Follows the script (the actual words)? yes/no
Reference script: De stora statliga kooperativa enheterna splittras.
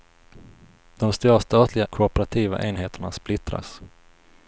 yes